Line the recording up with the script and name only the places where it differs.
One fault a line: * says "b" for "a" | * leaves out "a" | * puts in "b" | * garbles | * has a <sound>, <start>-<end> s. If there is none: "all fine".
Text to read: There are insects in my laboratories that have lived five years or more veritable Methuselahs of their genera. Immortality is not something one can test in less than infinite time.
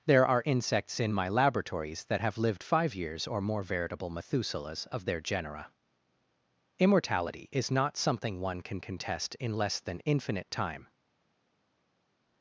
* puts in "can"